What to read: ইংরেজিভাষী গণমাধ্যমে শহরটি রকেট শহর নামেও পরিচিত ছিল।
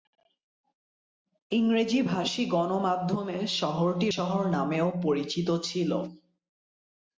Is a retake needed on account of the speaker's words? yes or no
yes